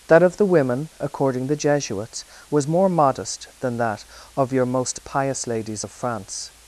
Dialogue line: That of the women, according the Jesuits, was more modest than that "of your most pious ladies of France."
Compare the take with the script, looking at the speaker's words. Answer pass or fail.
pass